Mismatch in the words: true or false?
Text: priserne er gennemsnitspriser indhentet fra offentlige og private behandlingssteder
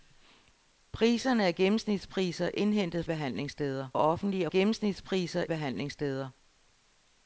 true